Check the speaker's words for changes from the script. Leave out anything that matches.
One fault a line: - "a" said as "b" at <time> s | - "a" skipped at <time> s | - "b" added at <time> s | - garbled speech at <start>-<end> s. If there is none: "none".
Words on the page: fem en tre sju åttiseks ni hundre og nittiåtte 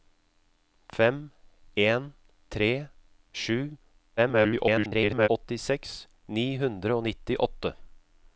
- garbled speech at 4.2-5.3 s